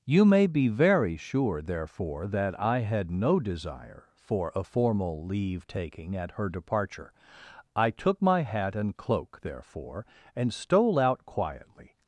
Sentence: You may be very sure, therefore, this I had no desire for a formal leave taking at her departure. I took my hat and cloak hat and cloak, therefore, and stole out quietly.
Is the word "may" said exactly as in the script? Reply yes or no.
yes